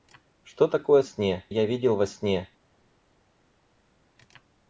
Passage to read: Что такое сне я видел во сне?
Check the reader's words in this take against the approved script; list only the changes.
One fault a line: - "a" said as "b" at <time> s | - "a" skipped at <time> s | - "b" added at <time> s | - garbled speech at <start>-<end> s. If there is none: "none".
none